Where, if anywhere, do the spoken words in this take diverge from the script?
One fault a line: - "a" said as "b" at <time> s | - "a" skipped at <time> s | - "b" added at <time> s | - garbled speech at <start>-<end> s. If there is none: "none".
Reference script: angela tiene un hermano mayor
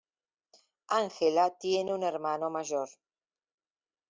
none